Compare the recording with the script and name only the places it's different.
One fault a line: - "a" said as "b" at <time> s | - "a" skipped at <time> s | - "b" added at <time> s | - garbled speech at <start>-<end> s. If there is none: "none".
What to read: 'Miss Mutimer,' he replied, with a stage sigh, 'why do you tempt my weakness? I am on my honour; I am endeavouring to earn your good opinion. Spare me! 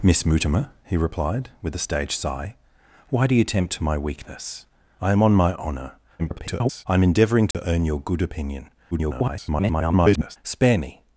- garbled speech at 6.2-6.8 s
- garbled speech at 8.9-10.4 s